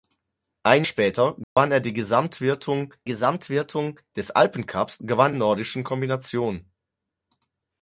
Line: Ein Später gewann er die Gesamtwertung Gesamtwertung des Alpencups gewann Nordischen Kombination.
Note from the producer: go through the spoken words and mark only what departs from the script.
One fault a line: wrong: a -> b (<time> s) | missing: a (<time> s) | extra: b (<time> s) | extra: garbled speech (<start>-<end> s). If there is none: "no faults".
no faults